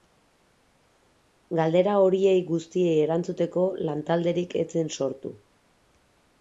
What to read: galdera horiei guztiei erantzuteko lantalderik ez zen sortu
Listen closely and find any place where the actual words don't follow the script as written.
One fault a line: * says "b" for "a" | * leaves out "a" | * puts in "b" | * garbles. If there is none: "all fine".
all fine